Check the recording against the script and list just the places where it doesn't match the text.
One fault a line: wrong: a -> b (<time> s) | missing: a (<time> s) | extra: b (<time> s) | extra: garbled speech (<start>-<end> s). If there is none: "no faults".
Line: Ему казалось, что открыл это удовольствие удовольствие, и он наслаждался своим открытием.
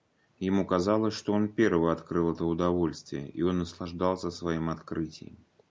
extra: он первый (1.3 s)
missing: удовольствие (3.3 s)